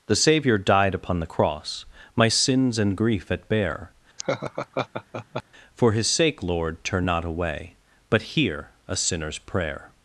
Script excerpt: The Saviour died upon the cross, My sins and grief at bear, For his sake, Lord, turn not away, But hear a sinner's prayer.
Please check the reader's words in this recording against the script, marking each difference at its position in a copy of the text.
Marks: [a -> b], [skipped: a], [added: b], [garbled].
The Saviour died upon the cross, My sins and grief at bear, For his sake, Lord, turn not away, But hear a sinner's prayer.